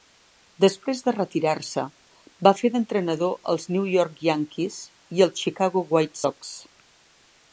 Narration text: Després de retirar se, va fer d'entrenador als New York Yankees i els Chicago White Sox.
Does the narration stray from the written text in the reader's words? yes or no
no